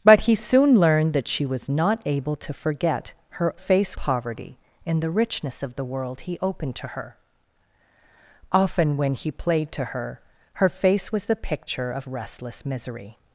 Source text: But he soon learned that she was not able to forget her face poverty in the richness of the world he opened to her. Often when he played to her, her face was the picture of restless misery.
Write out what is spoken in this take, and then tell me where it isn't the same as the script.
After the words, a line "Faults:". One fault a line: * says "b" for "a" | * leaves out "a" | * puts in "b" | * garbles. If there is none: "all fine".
But he soon learned that she was not able to forget her face poverty in the richness of the world he opened to her. Often when he played to her, her face was the picture of restless misery.
Faults:
all fine